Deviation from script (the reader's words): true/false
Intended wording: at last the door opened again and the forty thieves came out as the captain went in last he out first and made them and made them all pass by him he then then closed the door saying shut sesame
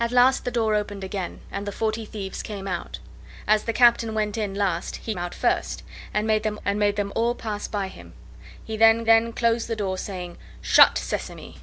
false